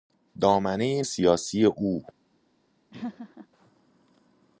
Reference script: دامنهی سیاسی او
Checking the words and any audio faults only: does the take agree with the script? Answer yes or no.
no